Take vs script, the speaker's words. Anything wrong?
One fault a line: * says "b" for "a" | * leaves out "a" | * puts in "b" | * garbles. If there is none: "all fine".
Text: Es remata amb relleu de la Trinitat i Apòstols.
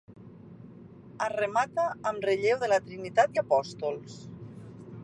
all fine